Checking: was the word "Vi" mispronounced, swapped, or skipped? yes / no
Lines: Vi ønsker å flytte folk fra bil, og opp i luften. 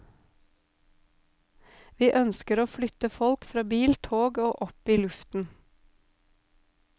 no